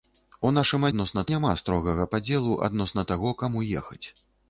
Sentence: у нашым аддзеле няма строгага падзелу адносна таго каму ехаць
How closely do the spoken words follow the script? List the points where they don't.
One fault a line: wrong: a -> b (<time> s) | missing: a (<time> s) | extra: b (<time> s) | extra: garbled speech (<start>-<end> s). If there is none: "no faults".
wrong: аддзеле -> адносна (0.9 s)